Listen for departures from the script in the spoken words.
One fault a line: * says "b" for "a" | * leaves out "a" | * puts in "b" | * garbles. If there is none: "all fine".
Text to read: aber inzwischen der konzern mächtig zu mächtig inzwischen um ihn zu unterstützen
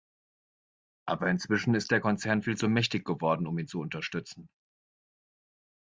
* puts in "ist"
* says "viel" for "mächtig"
* says "geworden" for "inzwischen"